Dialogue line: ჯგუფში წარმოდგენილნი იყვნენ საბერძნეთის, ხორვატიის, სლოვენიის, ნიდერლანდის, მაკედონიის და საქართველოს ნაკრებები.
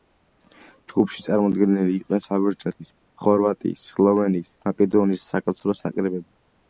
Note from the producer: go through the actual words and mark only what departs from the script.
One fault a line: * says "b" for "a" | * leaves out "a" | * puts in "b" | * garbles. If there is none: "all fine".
* leaves out "ნიდერლანდის"